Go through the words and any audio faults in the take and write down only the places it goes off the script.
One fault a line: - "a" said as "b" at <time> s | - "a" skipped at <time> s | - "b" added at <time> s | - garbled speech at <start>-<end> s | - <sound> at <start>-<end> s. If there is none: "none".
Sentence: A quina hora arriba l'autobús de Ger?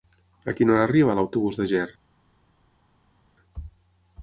none